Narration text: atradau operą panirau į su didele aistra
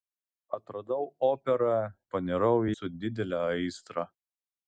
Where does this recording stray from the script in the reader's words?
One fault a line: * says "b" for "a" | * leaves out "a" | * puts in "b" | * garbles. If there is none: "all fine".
all fine